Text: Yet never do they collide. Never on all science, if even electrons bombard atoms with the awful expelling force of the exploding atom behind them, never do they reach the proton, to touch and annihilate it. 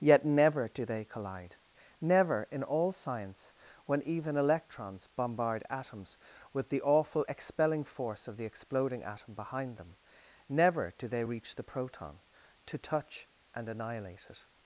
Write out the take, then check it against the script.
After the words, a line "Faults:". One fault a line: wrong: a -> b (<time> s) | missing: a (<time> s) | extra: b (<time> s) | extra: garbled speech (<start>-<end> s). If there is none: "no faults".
Yet never do they collide. Never in all science, when even electrons bombard atoms with the awful expelling force of the exploding atom behind them, never do they reach the proton, to touch and annihilate it.
Faults:
wrong: on -> in (2.5 s)
wrong: if -> when (3.9 s)